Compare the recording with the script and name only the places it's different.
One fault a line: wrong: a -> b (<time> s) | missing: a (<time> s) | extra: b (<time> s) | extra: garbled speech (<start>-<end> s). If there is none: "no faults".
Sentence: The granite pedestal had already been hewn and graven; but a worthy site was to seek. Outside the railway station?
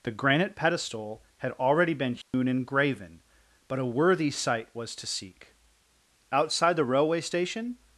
no faults